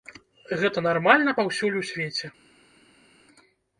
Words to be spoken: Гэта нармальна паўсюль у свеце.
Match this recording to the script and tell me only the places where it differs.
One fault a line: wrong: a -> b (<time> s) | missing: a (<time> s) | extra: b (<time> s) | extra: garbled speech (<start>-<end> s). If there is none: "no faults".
no faults